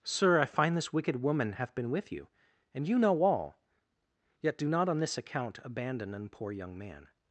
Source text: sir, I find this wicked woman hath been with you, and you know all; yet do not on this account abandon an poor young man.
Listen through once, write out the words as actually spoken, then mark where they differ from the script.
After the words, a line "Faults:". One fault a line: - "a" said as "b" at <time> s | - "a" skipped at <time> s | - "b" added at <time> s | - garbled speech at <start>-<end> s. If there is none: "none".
sir, I find this wicked woman hath been with you, and you know all; yet do not on this account abandon an poor young man.
Faults:
none